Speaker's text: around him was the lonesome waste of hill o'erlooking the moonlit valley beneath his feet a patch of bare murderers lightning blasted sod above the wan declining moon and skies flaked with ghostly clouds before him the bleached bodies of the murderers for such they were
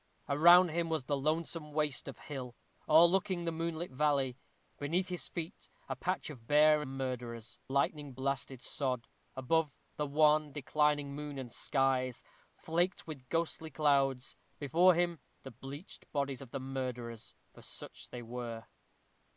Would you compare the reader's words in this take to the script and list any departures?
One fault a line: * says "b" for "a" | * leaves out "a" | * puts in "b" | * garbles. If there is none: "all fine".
all fine